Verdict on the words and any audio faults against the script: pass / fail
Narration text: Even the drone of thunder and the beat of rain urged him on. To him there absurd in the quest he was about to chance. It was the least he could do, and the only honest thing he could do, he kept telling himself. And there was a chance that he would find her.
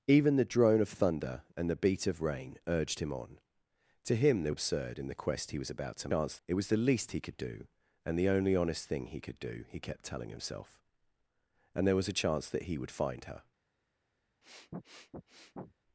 fail